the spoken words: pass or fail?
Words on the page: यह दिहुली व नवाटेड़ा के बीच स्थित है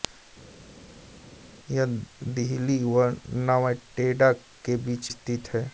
pass